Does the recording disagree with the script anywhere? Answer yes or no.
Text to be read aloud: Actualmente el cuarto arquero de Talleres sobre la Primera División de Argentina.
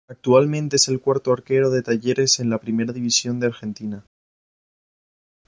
yes